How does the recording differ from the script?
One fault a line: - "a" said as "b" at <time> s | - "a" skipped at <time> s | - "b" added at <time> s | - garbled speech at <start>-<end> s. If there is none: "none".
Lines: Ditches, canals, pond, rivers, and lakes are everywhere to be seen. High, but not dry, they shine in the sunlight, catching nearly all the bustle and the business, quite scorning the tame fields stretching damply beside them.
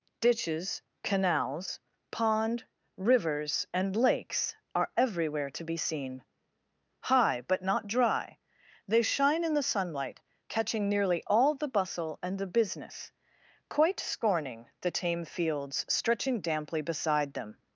none